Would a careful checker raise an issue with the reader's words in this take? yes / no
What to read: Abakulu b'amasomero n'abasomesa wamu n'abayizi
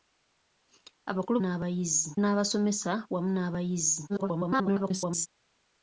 yes